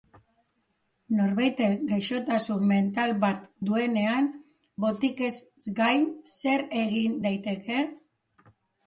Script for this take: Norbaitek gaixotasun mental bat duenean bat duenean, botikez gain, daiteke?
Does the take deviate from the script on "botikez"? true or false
true